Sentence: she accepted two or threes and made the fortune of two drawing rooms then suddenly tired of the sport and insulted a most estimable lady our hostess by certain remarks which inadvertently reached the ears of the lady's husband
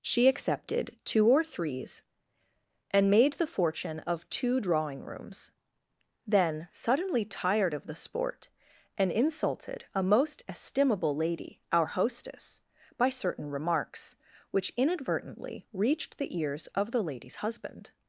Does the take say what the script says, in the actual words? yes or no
yes